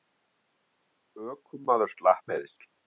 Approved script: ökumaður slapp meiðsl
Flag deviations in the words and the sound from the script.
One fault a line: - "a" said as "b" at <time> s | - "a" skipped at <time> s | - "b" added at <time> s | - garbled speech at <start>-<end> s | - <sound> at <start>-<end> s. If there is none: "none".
none